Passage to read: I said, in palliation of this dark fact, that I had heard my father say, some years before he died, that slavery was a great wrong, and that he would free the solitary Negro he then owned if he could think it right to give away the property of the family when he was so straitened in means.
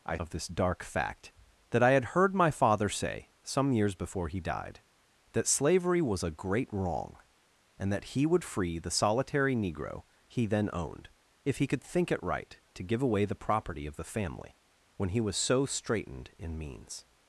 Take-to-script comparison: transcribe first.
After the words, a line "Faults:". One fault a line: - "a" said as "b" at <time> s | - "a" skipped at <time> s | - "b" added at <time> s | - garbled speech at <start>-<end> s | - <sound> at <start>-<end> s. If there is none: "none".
I of this dark fact, that I had heard my father say, some years before he died, that slavery was a great wrong, and that he would free the solitary Negro he then owned if he could think it right to give away the property of the family when he was so straitened in means.
Faults:
- "said in palliation" skipped at 0.2 s